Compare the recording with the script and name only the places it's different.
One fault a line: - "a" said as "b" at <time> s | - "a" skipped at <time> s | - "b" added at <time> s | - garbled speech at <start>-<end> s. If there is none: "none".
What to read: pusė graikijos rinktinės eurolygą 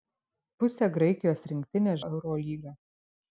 none